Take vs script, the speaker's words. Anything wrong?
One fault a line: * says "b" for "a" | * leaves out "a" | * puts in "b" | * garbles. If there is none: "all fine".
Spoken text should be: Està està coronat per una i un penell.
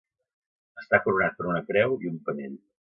* leaves out "està"
* puts in "creu"